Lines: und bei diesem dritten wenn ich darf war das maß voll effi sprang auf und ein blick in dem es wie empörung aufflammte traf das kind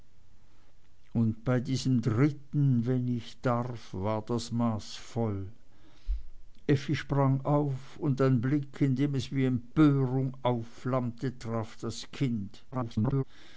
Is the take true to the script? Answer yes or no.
no